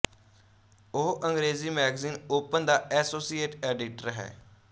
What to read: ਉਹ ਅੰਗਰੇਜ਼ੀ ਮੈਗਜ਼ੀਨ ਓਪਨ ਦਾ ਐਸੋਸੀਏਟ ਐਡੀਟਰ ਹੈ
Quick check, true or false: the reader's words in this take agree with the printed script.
true